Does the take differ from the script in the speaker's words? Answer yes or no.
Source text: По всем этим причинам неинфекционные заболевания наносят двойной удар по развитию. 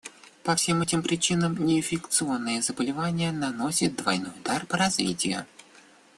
no